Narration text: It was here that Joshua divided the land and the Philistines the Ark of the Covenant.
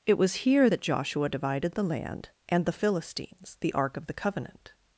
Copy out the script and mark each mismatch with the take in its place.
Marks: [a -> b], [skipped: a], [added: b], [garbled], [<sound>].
It was here that Joshua divided the land and the Philistines the Ark of the Covenant.